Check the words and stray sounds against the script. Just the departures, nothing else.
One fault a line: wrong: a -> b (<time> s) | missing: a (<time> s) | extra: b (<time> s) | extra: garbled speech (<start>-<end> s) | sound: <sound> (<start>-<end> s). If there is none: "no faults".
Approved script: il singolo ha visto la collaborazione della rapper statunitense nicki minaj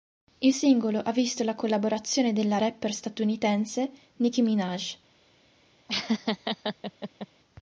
sound: laugh (5.9-7.3 s)